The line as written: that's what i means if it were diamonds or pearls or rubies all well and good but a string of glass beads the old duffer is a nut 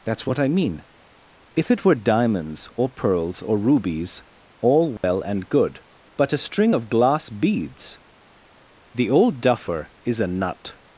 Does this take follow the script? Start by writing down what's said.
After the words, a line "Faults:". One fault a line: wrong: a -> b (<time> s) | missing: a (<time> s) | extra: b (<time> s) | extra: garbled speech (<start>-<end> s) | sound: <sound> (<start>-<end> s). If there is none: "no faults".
that's what i mean if it were diamonds or pearls or rubies all well and good but a string of glass beads the old duffer is a nut
Faults:
wrong: means -> mean (0.5 s)
sound: dropout (5.0-5.0 s)